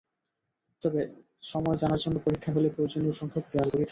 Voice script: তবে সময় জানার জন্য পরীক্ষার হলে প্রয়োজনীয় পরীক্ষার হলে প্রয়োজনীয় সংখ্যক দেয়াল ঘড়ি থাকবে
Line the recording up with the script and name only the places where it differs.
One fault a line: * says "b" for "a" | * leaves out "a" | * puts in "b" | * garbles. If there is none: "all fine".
* leaves out "পরীক্ষার হলে প্রয়োজনীয়"